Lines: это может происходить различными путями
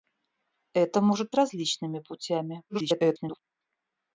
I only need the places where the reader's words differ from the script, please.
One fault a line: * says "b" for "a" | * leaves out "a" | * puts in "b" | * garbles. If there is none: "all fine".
* leaves out "происходить"
* garbles